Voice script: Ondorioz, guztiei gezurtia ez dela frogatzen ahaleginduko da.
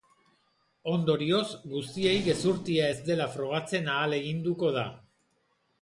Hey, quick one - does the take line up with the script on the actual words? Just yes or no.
yes